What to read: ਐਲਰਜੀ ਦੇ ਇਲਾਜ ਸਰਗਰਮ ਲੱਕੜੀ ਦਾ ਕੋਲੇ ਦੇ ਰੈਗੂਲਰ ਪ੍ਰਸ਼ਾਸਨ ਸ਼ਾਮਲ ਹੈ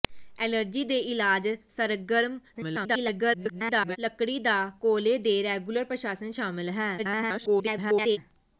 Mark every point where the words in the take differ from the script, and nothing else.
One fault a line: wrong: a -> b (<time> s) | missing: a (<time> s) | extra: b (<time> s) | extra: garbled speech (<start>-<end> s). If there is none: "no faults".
extra: garbled speech (2.5-4.0 s)
extra: garbled speech (7.0-8.2 s)